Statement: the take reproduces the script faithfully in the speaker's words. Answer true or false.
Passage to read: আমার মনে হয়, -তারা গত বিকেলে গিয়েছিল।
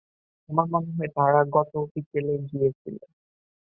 true